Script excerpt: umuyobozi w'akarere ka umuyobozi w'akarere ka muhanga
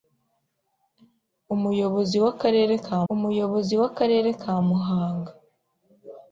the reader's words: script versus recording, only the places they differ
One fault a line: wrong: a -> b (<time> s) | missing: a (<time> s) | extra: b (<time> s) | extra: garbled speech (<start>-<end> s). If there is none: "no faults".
no faults